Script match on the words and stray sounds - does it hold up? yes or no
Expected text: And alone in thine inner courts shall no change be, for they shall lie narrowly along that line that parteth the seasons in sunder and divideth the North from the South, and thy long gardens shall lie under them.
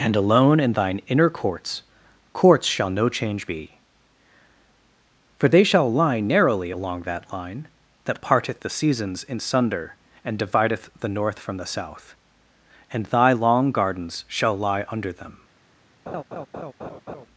no